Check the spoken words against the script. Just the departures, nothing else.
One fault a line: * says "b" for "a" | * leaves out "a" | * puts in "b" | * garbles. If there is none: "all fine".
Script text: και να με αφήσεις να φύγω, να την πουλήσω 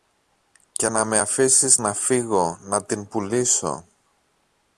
all fine